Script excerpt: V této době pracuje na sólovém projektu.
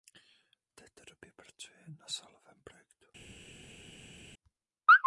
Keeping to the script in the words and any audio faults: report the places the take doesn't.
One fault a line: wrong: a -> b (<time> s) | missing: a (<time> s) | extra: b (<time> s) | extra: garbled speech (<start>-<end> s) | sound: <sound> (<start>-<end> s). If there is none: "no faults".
no faults